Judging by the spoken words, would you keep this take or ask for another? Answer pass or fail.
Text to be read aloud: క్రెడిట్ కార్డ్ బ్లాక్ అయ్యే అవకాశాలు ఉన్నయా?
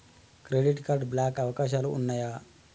fail